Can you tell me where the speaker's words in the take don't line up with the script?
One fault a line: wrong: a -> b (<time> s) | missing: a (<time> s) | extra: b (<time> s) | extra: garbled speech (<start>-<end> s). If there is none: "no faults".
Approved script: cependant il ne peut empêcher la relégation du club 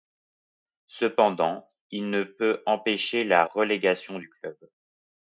no faults